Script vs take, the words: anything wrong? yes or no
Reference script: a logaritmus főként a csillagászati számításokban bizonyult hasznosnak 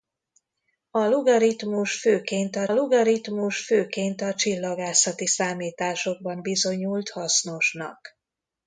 yes